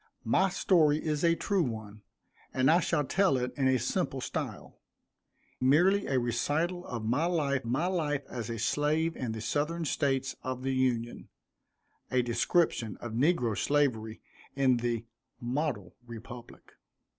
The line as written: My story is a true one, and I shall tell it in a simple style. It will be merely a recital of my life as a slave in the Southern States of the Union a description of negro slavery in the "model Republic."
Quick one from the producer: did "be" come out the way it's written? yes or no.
no